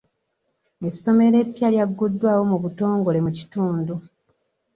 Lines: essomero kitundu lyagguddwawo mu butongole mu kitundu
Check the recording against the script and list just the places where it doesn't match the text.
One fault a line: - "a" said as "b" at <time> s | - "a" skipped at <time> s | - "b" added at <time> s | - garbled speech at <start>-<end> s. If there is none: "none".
- "kitundu" said as "eppya" at 1.4 s